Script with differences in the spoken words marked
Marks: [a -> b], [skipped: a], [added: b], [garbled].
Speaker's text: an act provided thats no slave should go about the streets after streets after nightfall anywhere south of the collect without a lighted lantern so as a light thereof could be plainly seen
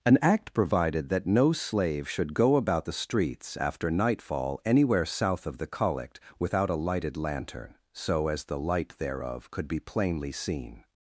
an act provided [thats -> that] no slave should go about the streets after [skipped: streets after] nightfall anywhere south of the collect without a lighted lantern so as [a -> the] light thereof could be plainly seen